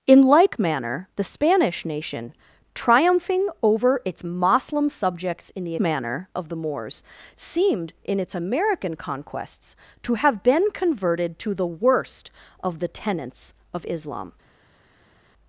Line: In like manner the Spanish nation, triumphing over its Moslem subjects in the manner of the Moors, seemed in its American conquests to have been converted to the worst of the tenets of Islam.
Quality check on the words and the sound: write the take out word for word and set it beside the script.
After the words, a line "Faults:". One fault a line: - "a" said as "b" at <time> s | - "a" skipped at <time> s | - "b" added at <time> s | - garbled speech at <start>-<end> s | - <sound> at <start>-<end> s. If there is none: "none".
In like manner the Spanish nation, triumphing over its Moslem subjects in the manner of the Moors, seemed in its American conquests to have been converted to the worst of the tenets of Islam.
Faults:
none